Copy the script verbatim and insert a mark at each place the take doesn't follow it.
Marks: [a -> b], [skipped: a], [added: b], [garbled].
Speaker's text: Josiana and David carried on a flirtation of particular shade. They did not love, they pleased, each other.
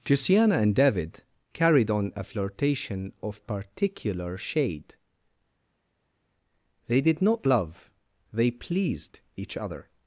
Josiana and David carried on a flirtation of particular shade. They did not love, they pleased, each other.